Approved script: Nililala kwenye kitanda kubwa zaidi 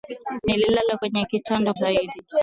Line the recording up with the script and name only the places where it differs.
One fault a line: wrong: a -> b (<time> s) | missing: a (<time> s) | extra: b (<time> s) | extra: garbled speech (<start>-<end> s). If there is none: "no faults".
missing: kubwa (1.7 s)